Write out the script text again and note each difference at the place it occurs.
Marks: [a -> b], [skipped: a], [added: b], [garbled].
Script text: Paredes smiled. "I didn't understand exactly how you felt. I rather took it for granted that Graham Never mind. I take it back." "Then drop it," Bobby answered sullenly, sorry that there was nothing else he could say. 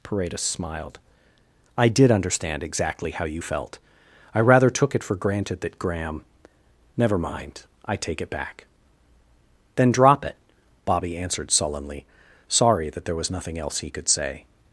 Paredes smiled. "I [didn't -> did] understand exactly how you felt. I rather took it for granted that Graham Never mind. I take it back." "Then drop it," Bobby answered sullenly, sorry that there was nothing else he could say.